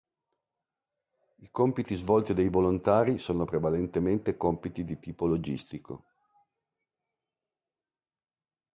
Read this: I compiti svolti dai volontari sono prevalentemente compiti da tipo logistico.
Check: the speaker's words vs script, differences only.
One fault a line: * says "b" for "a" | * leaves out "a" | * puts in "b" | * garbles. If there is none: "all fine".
* says "di" for "da"